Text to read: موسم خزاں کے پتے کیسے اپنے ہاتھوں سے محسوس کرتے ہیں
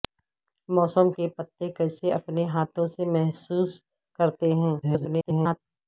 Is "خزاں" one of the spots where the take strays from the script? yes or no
yes